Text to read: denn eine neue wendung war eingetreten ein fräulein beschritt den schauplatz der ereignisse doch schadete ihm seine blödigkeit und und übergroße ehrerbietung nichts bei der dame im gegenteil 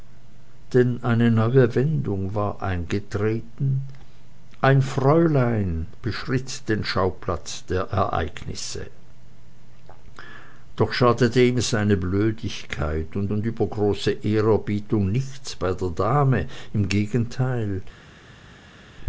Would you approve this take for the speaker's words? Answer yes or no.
yes